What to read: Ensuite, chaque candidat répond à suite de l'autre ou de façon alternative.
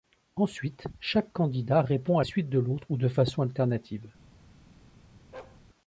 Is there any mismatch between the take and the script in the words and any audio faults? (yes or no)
yes